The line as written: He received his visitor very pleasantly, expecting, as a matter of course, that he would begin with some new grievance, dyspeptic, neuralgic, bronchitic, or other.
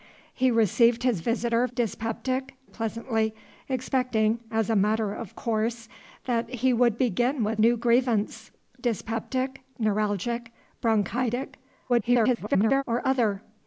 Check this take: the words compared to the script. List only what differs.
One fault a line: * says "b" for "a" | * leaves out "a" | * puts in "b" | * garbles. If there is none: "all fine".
* says "dyspeptic" for "very"
* leaves out "some"
* garbles